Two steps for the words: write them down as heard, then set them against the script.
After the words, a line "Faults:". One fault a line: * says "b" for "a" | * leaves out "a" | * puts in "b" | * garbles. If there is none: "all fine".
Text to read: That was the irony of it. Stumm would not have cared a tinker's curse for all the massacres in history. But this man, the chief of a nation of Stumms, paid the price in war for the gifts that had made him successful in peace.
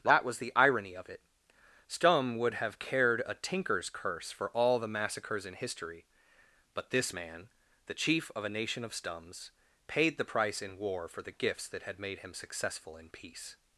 That was the irony of it. Stumm would have cared a tinker's curse for all the massacres in history. But this man, the chief of a nation of Stumms, paid the price in war for the gifts that had made him successful in peace.
Faults:
* leaves out "not"